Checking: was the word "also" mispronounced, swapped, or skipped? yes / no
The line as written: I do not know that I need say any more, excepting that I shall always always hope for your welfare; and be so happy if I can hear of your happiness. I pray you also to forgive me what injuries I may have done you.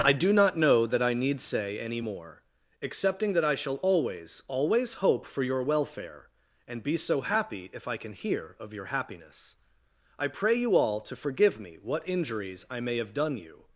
yes